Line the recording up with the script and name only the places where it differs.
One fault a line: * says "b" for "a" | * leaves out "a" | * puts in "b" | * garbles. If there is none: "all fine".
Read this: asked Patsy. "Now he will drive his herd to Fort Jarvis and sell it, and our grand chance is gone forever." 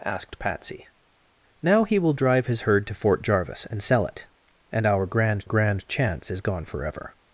* puts in "grand"